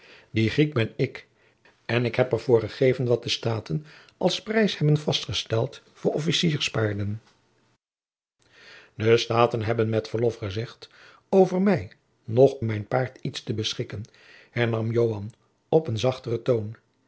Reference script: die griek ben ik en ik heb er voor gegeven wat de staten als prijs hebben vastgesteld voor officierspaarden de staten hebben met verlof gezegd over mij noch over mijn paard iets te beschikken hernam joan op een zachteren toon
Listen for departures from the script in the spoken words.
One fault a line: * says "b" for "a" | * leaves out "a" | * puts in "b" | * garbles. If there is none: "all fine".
* leaves out "over"